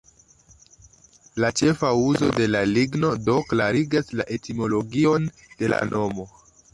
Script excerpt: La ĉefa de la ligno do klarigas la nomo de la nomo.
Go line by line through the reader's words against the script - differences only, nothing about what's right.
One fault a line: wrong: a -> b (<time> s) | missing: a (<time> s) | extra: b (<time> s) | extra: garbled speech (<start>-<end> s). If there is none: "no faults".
extra: uzo (2.0 s)
wrong: nomo -> etimologion (4.4 s)